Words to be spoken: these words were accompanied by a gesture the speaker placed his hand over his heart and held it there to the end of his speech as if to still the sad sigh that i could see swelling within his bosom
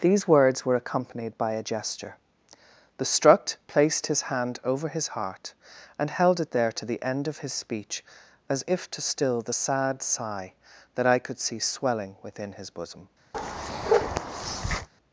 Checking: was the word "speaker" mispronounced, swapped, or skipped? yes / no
yes